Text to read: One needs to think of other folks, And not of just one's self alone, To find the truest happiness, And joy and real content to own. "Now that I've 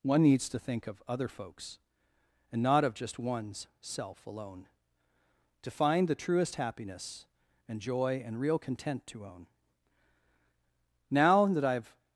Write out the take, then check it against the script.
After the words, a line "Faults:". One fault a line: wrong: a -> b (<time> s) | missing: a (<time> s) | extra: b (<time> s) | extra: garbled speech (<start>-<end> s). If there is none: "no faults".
One needs to think of other folks, And not of just one's self alone, To find the truest happiness, And joy and real content to own. "Now that I've
Faults:
no faults